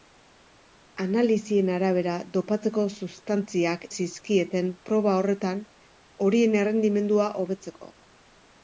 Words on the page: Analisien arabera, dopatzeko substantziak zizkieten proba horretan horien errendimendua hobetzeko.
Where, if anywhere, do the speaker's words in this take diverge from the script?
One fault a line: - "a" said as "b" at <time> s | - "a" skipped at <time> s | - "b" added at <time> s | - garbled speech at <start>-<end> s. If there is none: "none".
none